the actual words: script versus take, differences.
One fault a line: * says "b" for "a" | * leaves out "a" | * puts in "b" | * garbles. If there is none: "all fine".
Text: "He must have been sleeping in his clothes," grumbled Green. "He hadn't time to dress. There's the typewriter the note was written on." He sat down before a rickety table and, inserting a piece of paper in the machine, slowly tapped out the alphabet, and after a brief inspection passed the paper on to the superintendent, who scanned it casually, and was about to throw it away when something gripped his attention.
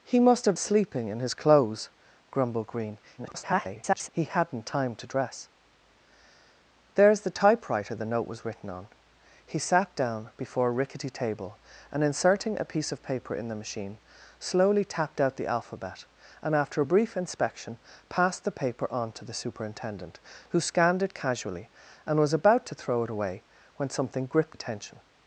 * leaves out "been"
* garbles
* leaves out "his"